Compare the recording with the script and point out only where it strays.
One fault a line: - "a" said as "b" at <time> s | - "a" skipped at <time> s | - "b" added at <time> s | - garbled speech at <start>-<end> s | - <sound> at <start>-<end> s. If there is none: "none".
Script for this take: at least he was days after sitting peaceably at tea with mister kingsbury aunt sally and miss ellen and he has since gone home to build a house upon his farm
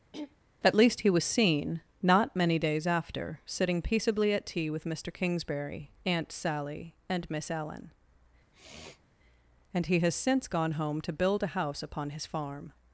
- throat clearing at 0.1-0.4 s
- "seen not many" added at 1.2 s
- sniff at 8.5-9.1 s